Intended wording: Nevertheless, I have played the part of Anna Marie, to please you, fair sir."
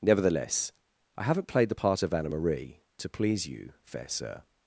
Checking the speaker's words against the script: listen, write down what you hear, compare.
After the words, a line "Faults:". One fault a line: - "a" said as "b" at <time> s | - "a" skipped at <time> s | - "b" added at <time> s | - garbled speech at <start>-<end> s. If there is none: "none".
Nevertheless, I haven't played the part of Anna Marie, to please you, fair sir."
Faults:
- "have" said as "haven't" at 1.2 s